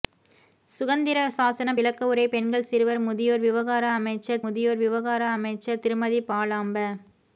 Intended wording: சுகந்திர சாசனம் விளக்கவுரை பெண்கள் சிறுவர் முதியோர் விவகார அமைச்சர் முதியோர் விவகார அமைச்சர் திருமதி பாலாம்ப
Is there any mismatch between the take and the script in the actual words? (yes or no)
no